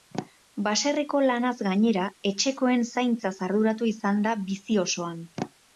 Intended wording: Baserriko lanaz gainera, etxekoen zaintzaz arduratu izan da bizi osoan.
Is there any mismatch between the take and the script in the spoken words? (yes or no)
no